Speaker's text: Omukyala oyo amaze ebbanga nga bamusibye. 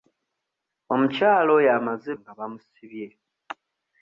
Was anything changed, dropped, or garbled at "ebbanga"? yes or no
yes